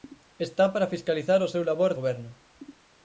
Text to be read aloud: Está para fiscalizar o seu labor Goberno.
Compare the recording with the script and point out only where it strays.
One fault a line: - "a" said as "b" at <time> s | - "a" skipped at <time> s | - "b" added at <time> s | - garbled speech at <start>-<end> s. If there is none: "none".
none